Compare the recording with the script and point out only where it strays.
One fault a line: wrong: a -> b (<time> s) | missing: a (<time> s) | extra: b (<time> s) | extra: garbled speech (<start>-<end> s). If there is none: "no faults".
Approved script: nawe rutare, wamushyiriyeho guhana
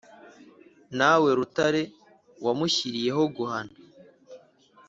no faults